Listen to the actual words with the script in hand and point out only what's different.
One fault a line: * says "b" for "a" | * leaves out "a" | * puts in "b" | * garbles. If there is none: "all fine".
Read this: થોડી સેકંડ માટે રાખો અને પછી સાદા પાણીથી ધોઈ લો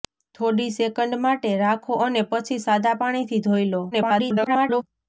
* garbles